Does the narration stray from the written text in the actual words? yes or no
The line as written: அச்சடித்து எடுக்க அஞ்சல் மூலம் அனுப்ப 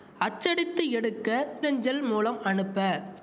no